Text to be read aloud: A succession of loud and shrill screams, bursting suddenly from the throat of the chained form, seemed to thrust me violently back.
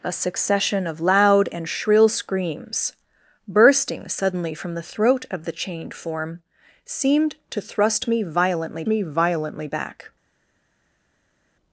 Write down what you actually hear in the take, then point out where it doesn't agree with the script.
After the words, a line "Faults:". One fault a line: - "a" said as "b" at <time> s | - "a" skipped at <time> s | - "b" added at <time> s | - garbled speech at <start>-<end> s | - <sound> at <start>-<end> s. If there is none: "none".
A succession of loud and shrill screams, bursting suddenly from the throat of the chained form, seemed to thrust me violently me violently back.
Faults:
- "me violently" added at 8.9 s